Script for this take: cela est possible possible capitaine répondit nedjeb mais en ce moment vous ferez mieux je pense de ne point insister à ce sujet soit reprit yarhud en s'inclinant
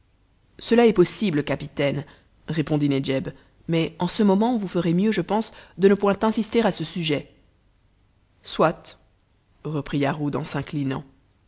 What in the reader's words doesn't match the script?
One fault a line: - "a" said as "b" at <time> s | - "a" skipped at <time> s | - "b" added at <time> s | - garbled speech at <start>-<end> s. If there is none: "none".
- "possible" skipped at 1.4 s